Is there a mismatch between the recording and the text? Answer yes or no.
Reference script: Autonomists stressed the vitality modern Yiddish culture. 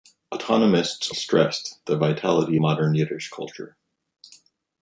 no